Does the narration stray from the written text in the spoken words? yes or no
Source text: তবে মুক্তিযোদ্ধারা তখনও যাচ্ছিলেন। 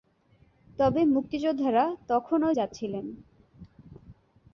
no